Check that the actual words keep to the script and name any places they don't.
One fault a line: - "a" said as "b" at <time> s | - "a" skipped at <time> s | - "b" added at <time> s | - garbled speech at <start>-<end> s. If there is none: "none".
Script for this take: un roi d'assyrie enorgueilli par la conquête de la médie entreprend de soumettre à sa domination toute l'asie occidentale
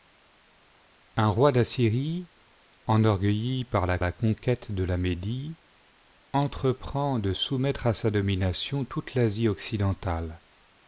- "la" added at 4.0 s